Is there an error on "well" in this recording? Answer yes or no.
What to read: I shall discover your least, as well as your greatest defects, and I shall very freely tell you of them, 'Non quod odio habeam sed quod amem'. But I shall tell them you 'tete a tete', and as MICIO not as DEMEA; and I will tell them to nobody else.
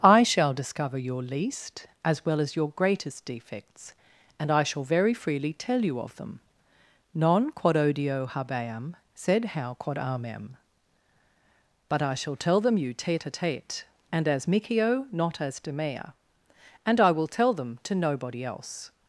no